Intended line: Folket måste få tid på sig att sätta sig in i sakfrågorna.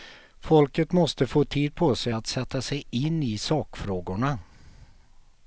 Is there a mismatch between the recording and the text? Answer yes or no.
no